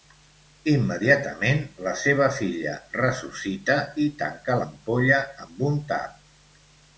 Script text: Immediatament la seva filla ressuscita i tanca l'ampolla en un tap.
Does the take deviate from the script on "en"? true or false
true